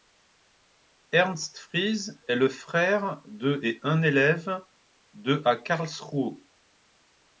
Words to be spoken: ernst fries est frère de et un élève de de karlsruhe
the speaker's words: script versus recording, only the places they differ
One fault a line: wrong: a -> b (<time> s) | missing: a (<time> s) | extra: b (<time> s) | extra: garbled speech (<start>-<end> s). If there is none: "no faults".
extra: le (2.4 s)
wrong: de -> à (5.4 s)